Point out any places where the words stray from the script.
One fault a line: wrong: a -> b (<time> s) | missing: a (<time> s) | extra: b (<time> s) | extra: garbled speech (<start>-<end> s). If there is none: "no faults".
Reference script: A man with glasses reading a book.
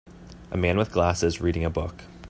no faults